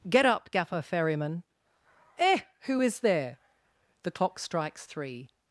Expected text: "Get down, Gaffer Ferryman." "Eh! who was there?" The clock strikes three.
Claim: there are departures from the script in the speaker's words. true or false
true